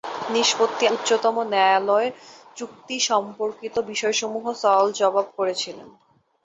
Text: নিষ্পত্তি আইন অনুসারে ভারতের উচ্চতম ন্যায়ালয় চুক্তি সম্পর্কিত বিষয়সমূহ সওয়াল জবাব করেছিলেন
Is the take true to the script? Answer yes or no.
no